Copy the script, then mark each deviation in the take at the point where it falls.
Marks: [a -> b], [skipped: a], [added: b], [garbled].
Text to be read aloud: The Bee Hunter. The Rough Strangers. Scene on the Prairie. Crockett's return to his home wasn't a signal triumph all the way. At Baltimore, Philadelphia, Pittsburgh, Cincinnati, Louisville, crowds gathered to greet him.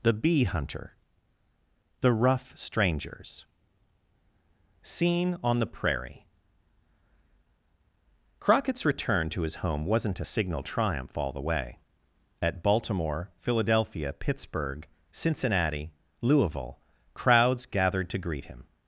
The Bee Hunter. The Rough Strangers. Scene on the Prairie. Crockett's return to his home wasn't a signal triumph all the way. At Baltimore, Philadelphia, Pittsburgh, Cincinnati, Louisville, crowds gathered to greet him.